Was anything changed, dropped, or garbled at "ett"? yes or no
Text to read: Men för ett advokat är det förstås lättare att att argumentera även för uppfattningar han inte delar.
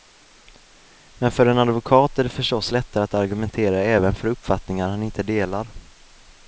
yes